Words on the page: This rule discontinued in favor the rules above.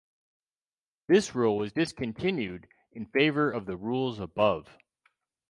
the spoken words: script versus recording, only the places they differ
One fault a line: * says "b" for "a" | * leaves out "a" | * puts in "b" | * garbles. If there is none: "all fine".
* puts in "was"
* puts in "of"